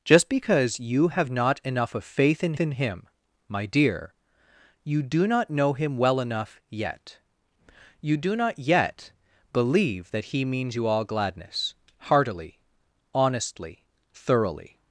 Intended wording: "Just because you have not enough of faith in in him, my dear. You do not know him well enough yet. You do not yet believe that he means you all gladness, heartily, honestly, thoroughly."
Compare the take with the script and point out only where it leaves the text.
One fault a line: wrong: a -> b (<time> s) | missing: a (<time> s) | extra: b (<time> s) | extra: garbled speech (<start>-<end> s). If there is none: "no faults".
no faults